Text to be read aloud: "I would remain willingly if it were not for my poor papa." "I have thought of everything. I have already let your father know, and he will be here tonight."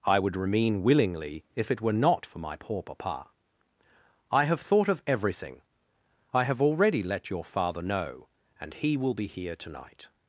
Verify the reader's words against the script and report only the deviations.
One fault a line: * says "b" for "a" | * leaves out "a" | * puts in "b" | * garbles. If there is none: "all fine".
all fine